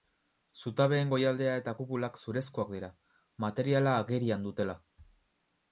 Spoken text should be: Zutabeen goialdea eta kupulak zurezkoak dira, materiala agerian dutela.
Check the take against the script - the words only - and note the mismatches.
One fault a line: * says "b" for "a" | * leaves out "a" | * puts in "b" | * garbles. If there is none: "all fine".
all fine